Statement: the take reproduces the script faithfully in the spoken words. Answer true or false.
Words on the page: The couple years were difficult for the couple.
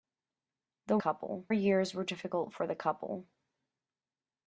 true